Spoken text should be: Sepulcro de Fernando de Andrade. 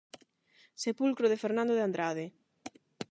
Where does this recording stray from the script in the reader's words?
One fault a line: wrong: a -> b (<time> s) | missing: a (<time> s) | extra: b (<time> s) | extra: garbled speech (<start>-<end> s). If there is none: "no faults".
no faults